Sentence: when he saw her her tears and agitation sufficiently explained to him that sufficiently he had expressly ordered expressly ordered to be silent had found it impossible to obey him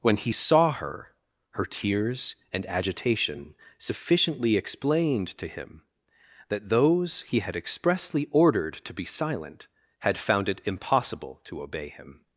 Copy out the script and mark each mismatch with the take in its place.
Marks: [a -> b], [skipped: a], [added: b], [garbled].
when he saw her her tears and agitation sufficiently explained to him that [sufficiently -> those] he had expressly ordered [skipped: expressly ordered] to be silent had found it impossible to obey him